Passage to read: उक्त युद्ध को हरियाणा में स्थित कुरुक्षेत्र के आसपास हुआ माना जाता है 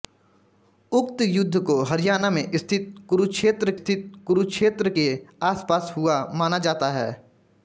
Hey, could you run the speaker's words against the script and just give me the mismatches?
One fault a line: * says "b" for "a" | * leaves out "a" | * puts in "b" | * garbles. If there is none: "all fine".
* puts in "स्थित कुरुक्षेत्र"